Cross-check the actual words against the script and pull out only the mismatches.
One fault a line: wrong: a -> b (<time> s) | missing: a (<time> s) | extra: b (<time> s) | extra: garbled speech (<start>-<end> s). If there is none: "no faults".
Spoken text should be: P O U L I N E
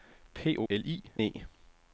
missing: U (0.6 s)
missing: N (1.0 s)